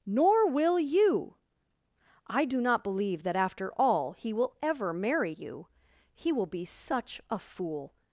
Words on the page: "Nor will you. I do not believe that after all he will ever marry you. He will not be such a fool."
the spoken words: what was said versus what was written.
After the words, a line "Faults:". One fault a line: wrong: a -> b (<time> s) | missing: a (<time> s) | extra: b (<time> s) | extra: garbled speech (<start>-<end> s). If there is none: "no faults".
"Nor will you. I do not believe that after all he will ever marry you. He will be such a fool."
Faults:
missing: not (6.5 s)